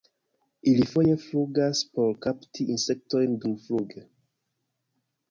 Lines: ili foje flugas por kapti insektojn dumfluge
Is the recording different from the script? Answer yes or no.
no